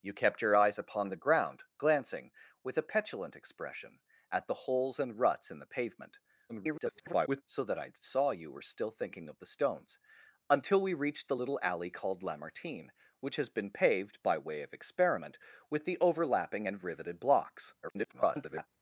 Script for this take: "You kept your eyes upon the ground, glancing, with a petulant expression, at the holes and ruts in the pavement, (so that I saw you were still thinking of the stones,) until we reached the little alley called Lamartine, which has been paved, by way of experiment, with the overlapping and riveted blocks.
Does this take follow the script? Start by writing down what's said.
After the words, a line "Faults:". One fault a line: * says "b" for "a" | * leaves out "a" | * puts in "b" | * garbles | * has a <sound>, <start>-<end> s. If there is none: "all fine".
"You kept your eyes upon the ground, glancing, with a petulant expression, at the holes and ruts in the pavement, [garbled] (so that I saw you were still thinking of the stones,) until we reached the little alley called Lamartine, which has been paved, by way of experiment, with the overlapping and riveted blocks. [garbled]
Faults:
* garbles
* garbles